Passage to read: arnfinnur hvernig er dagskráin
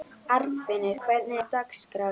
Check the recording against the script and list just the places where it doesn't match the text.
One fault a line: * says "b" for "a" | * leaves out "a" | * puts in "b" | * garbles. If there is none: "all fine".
all fine